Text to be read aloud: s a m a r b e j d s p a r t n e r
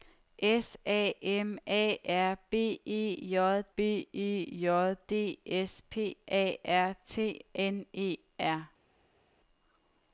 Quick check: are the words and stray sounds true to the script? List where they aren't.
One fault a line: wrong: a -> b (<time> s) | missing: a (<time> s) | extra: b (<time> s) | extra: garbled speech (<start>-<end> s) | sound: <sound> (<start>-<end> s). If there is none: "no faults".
extra: b e j (3.7 s)